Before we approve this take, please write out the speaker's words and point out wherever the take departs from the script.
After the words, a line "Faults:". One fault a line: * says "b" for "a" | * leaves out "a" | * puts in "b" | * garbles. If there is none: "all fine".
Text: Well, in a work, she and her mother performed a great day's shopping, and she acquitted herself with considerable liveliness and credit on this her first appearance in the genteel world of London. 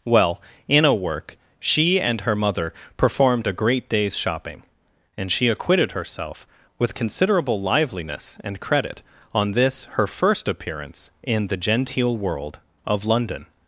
Well, in a work, she and her mother performed a great day's shopping, and she acquitted herself with considerable liveliness and credit on this her first appearance in the genteel world of London.
Faults:
all fine